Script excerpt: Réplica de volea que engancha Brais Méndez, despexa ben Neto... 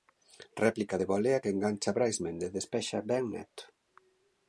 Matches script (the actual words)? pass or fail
pass